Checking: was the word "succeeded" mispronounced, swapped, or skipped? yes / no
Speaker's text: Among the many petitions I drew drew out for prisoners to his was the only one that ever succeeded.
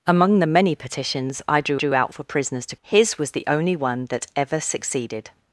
no